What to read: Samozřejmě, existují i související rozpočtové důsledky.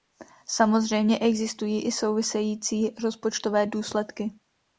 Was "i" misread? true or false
false